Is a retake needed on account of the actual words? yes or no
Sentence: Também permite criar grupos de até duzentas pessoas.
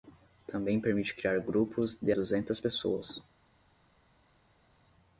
yes